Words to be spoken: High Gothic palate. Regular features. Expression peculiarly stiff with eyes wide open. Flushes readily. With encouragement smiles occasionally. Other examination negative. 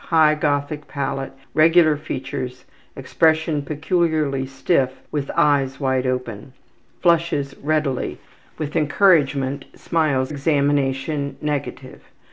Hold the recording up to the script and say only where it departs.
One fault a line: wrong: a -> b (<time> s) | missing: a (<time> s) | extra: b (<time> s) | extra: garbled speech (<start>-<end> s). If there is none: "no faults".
missing: occasionally Other (10.3 s)